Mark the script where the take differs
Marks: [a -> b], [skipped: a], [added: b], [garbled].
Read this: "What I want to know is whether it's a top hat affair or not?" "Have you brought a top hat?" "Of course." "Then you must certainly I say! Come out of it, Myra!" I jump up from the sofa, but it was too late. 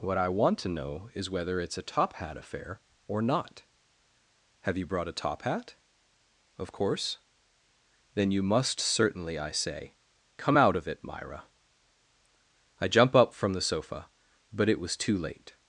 "What I want to know is whether it's a top hat affair or not?" "Have you brought a top hat?" "Of course." "Then you must certainly I say! Come out of it, Myra!" I jump up from the sofa, but it was too late.